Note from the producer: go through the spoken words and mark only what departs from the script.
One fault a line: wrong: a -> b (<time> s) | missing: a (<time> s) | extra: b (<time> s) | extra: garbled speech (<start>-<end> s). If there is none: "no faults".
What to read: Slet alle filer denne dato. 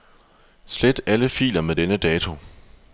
extra: med (1.6 s)